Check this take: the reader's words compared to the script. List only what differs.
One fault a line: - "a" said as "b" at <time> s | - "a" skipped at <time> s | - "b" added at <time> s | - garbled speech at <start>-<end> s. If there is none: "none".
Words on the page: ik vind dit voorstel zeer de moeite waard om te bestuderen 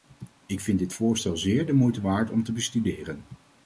none